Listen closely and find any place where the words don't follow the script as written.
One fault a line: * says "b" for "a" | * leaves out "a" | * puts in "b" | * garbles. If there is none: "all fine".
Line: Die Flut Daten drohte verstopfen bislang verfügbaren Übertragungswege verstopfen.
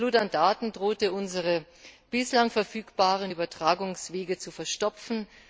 * puts in "an"
* says "unsere" for "verstopfen"
* puts in "zu"